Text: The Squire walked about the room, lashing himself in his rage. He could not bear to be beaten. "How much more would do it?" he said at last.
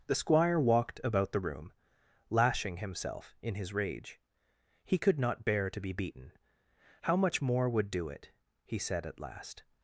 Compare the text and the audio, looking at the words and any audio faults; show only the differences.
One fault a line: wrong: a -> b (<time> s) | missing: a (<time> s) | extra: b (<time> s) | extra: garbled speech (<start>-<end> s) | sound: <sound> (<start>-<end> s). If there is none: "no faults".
no faults